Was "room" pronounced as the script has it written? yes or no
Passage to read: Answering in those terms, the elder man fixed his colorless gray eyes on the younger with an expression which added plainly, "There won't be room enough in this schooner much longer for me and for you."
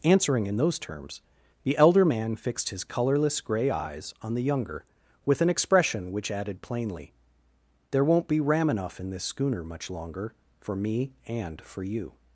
no